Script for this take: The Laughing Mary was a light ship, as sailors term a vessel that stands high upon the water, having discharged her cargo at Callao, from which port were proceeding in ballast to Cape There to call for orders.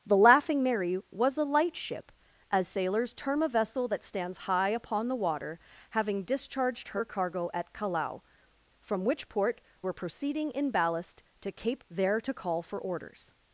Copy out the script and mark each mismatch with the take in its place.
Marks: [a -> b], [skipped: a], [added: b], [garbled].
The Laughing Mary was a light ship, as sailors term a vessel that stands high upon the water, having discharged her cargo at Callao, from which port were proceeding in ballast to Cape There to call for orders.